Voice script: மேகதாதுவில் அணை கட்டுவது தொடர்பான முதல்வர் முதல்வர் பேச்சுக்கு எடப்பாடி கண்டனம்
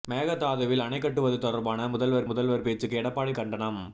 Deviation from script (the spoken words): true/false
false